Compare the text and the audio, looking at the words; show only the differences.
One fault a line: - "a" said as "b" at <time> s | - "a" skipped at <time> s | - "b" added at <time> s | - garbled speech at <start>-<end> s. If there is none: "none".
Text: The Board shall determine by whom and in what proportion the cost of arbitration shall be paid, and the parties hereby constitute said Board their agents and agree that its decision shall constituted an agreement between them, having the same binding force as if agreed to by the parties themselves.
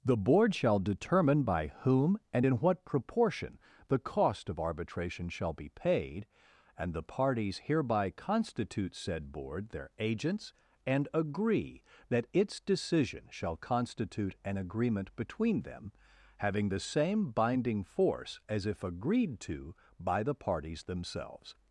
- "constituted" said as "constitute" at 13.6 s